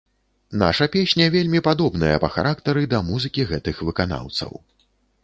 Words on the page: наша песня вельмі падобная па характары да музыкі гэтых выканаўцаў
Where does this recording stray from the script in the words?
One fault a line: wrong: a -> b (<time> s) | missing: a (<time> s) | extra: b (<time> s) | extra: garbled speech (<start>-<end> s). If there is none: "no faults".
no faults